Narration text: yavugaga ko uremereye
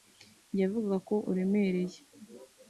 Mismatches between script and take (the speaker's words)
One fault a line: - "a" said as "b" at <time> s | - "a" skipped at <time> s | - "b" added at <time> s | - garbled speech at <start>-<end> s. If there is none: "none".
none